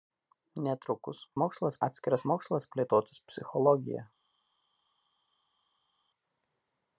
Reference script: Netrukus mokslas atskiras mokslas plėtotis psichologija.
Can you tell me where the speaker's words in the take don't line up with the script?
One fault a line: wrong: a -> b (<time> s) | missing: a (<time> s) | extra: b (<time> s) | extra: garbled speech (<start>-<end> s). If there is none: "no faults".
no faults